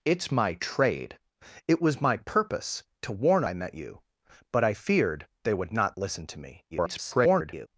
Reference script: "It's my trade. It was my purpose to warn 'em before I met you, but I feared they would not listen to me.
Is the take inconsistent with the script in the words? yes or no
yes